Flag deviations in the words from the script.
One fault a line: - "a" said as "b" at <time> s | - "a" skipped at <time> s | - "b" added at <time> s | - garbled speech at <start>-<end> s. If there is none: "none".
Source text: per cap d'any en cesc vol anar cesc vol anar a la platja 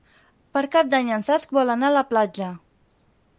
- "cesc vol anar" skipped at 1.9 s